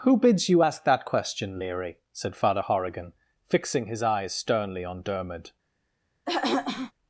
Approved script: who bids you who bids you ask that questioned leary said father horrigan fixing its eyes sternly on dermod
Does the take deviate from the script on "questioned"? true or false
true